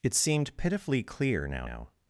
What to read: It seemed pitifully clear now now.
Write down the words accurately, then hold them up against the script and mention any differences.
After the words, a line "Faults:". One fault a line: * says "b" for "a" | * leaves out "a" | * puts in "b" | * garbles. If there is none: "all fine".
It seemed pitifully clear now now.
Faults:
all fine